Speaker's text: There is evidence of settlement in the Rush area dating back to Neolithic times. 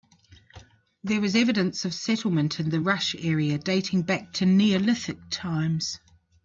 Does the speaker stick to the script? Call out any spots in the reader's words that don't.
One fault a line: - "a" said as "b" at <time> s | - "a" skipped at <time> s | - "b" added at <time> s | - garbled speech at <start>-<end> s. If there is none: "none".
none